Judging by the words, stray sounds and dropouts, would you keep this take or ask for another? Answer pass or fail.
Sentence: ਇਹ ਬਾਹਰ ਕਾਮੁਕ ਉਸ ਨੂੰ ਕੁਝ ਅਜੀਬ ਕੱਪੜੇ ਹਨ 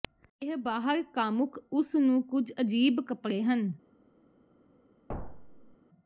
fail